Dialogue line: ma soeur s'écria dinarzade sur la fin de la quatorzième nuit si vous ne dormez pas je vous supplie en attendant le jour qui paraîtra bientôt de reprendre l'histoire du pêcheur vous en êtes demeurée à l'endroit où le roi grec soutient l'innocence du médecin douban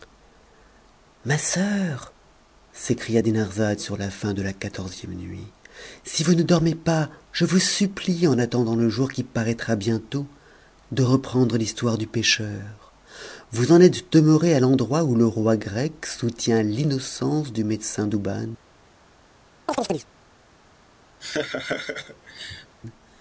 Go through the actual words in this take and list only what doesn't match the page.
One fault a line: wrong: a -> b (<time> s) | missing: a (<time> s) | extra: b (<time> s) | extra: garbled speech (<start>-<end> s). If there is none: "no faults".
no faults